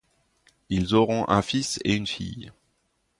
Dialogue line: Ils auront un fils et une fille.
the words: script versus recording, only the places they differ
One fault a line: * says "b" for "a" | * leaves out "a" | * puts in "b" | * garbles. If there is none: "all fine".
all fine